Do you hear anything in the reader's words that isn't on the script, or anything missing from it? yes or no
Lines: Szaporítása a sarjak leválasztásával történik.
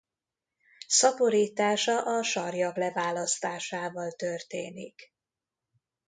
no